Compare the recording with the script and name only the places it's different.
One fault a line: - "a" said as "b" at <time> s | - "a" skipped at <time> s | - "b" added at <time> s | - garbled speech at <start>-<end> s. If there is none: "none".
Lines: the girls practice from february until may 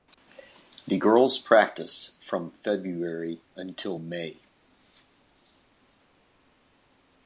none